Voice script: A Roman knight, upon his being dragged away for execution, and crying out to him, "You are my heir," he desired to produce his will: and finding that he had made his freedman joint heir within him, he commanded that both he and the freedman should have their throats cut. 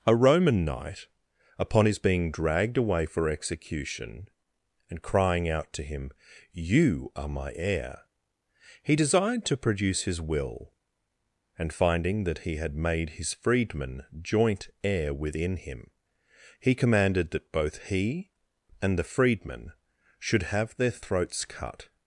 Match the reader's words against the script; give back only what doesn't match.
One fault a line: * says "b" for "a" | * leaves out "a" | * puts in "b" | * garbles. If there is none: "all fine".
all fine